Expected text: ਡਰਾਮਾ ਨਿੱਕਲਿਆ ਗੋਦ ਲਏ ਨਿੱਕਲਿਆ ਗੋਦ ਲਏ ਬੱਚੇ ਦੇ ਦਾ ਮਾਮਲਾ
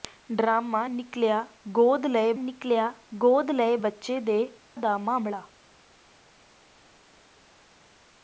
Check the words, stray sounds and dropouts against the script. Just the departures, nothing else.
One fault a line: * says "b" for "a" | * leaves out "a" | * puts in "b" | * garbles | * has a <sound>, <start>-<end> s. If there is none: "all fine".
all fine